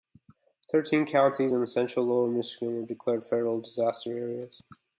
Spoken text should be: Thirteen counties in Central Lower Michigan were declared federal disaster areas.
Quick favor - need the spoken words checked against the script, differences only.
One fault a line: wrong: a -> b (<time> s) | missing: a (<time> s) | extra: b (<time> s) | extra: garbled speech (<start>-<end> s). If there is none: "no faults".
no faults